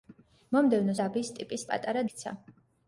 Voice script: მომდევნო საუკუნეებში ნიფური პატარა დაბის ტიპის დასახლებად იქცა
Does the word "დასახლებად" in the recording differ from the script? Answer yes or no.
yes